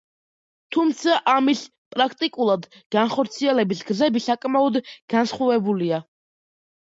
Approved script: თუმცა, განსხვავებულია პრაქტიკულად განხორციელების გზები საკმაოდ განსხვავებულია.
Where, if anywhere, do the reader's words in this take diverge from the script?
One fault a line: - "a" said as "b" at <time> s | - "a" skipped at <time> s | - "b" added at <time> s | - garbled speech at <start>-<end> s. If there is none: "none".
- "განსხვავებულია" said as "ამის" at 1.3 s